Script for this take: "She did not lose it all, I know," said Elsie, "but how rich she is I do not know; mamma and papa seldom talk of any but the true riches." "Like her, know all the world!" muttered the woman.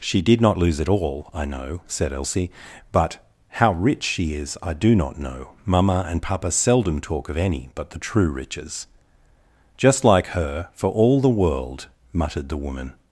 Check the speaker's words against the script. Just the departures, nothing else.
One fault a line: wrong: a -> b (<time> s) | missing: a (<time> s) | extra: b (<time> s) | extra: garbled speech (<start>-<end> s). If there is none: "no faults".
extra: Just (9.8 s)
wrong: know -> for (10.7 s)